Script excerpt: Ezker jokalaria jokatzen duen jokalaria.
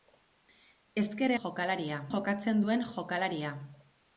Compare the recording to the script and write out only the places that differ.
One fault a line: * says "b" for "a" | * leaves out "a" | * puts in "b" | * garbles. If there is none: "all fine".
all fine